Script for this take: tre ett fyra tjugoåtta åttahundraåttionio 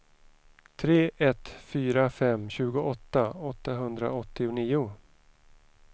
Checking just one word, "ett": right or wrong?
right